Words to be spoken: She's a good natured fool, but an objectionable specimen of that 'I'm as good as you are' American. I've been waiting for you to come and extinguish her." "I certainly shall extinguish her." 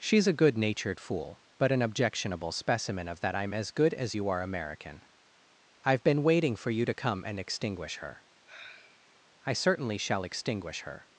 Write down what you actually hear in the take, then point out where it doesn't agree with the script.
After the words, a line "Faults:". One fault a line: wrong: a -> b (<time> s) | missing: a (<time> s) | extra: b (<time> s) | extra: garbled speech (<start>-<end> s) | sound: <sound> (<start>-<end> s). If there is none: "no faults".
She's a good natured fool, but an objectionable specimen of that 'I'm as good as you are' American. I've been waiting for you to come and extinguish her." "I certainly shall extinguish her."
Faults:
sound: sigh (8.5-9.2 s)